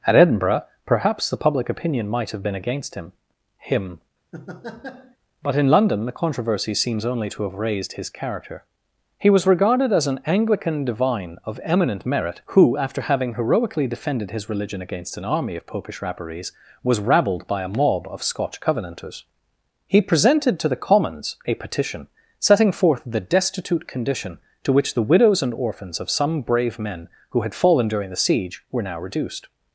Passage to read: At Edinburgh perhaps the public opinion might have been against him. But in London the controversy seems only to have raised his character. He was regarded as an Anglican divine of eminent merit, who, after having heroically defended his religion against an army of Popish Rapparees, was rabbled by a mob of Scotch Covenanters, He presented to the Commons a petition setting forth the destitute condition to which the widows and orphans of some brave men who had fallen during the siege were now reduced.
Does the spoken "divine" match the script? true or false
true